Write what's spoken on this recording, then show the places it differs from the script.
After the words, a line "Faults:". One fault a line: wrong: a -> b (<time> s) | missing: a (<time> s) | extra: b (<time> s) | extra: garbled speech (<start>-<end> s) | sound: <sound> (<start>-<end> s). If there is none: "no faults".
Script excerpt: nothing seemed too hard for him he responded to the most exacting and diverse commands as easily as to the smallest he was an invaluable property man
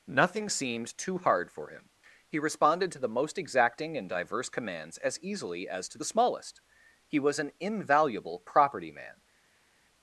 nothing seemed too hard for him he responded to the most exacting and diverse commands as easily as to the smallest he was an invaluable property man
Faults:
no faults